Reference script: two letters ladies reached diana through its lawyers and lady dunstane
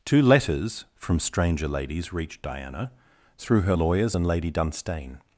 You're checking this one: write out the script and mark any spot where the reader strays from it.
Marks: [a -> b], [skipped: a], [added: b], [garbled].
two letters [added: from stranger] ladies reached diana through [its -> her] lawyers and lady dunstane